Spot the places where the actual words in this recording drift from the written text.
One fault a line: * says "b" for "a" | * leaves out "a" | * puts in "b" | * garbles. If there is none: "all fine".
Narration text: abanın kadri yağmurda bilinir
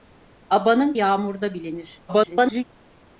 * leaves out "kadri"
* garbles